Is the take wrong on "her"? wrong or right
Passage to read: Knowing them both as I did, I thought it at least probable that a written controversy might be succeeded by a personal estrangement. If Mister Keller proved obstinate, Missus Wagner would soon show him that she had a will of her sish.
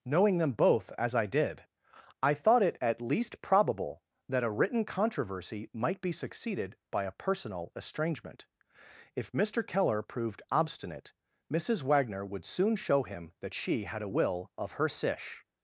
right